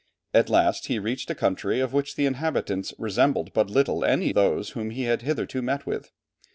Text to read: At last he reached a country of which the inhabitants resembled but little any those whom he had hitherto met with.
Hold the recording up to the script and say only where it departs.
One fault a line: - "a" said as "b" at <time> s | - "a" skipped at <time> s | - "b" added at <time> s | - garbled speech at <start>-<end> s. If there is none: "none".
none